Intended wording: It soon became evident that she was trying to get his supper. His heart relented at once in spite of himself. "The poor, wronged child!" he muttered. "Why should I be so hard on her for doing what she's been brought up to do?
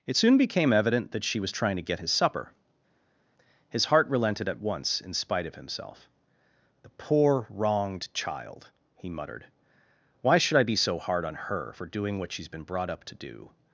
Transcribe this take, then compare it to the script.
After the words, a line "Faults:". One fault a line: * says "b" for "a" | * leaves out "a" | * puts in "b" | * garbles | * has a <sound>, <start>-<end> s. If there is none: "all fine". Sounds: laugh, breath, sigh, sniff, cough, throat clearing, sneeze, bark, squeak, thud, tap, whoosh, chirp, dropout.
It soon became evident that she was trying to get his supper. His heart relented at once in spite of himself. "The poor, wronged child!" he muttered. "Why should I be so hard on her for doing what she's been brought up to do?
Faults:
all fine